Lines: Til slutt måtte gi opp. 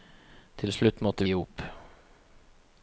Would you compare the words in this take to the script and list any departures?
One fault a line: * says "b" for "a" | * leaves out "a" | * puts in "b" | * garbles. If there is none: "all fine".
all fine